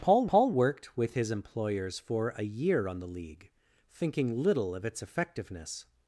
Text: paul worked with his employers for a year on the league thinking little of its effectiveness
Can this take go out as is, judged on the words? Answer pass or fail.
fail